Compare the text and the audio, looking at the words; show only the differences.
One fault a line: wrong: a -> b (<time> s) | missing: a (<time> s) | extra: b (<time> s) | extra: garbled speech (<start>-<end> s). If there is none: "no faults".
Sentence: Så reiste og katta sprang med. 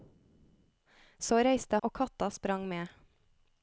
no faults